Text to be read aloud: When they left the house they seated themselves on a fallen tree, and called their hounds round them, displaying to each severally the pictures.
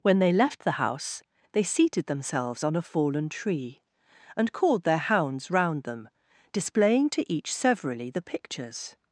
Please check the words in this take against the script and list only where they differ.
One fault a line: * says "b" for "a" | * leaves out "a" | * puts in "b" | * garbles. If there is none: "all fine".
all fine